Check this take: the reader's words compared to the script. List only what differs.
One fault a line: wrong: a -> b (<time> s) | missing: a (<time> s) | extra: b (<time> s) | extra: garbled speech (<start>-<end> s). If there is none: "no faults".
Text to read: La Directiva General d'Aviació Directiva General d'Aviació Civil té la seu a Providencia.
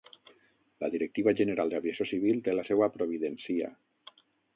missing: Directiva General d'Aviació (2.1 s)